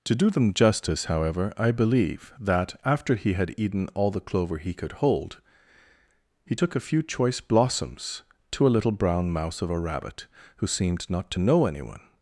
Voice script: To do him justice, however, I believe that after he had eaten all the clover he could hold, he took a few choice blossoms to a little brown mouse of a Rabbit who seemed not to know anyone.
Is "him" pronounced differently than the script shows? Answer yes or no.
yes